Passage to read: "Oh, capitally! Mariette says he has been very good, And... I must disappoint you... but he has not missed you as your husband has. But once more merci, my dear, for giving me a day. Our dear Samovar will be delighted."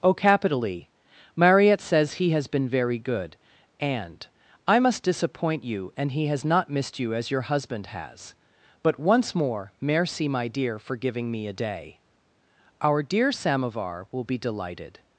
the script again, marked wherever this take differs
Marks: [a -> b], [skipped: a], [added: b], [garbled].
"Oh, capitally! Mariette says he has been very good, And... I must disappoint you... [but -> and] he has not missed you as your husband has. But once more merci, my dear, for giving me a day. Our dear Samovar will be delighted."